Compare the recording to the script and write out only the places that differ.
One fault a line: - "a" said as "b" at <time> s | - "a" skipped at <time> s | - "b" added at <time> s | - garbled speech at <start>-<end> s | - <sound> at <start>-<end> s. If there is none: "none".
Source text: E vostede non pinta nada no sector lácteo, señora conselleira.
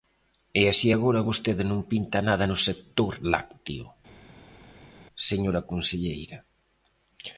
- "así agora" added at 0.7 s